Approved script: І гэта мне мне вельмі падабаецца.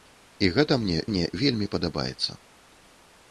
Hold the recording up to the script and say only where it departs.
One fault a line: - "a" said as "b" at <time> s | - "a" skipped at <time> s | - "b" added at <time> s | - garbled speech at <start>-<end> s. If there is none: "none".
none